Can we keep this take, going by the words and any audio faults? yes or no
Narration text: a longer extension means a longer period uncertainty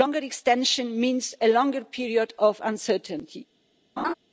no